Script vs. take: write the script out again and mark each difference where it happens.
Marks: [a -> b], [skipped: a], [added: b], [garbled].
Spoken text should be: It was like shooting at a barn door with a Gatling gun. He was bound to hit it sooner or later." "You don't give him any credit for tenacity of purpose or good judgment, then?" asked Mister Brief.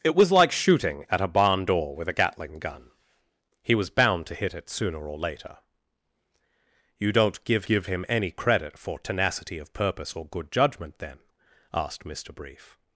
It was like shooting at a barn door with a Gatling gun. He was bound to hit it sooner or later." "You don't give [added: give] him any credit for tenacity of purpose or good judgment, then?" asked Mister Brief.